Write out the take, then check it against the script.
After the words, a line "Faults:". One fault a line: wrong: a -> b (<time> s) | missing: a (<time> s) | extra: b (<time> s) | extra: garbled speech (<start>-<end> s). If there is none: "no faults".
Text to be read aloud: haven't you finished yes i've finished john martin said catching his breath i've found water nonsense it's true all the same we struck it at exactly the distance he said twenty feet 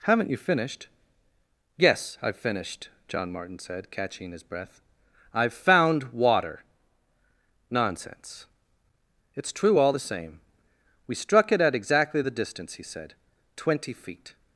haven't you finished yes i've finished john martin said catching his breath i've found water nonsense it's true all the same we struck it at exactly the distance he said twenty feet
Faults:
no faults